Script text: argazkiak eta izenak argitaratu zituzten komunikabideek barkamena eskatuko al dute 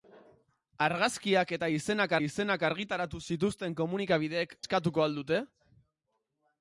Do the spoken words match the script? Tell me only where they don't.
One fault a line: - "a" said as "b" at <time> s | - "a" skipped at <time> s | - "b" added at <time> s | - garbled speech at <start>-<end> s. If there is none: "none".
- "izenak" added at 2.2 s
- "barkamena" skipped at 4.6 s